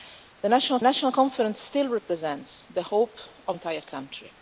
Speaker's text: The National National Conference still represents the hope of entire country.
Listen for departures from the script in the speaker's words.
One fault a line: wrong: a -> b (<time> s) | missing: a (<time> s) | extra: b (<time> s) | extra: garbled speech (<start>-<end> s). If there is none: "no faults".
no faults